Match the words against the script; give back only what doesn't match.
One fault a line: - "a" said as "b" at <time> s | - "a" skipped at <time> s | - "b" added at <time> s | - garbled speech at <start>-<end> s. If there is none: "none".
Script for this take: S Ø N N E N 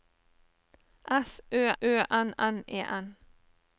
- "Ø" added at 1.8 s